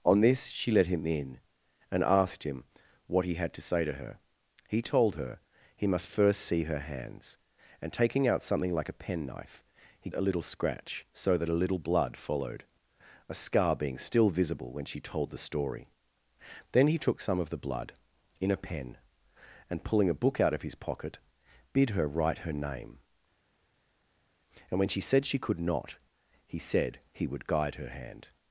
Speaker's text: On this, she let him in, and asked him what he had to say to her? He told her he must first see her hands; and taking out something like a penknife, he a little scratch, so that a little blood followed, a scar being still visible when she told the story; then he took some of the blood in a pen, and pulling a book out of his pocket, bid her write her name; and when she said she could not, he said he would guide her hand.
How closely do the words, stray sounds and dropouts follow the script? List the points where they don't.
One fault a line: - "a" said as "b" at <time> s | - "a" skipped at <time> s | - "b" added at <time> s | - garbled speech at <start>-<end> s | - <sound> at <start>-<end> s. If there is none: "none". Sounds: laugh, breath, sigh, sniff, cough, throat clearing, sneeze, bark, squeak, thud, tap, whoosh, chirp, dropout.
none